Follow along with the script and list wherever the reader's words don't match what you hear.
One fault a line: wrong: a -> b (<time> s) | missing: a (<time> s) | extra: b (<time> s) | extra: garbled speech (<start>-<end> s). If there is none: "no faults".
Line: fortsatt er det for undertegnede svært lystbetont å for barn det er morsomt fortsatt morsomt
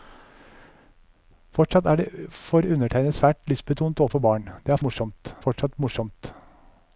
no faults